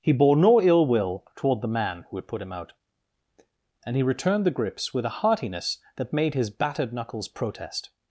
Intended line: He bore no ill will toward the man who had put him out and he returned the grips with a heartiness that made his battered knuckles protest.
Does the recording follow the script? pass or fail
pass